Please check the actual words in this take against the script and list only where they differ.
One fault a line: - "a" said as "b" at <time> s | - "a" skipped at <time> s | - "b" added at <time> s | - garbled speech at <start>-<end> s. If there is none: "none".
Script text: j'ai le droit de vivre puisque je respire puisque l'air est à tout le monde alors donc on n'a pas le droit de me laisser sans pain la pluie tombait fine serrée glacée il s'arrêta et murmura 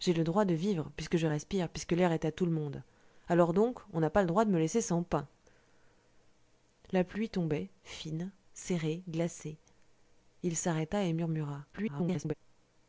- garbled speech at 11.7-12.3 s